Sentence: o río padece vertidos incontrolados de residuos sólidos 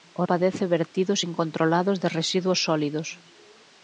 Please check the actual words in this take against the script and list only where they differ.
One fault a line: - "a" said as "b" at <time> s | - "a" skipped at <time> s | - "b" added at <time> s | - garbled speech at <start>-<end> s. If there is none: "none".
- "río" skipped at 0.2 s